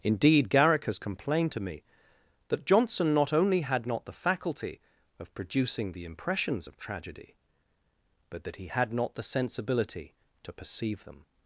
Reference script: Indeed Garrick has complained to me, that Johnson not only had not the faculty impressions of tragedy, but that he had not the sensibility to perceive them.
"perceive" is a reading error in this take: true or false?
false